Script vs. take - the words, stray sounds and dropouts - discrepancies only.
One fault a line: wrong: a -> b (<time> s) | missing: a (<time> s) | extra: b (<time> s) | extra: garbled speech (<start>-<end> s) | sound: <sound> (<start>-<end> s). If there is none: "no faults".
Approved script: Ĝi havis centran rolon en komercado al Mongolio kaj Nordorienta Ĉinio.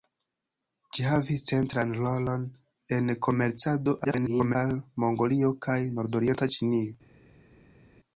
extra: garbled speech (4.0-4.6 s)